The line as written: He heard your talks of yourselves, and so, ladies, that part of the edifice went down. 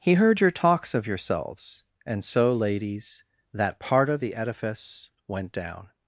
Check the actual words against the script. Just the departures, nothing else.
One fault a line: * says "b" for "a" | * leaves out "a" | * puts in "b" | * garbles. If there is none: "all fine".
all fine